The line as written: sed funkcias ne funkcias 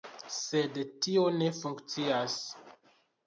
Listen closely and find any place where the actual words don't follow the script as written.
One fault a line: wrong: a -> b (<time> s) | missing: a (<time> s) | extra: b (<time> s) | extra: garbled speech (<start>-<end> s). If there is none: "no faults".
wrong: funkcias -> tio (1.1 s)